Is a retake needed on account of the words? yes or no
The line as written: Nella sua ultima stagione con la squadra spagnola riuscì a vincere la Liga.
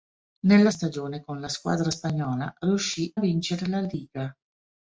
yes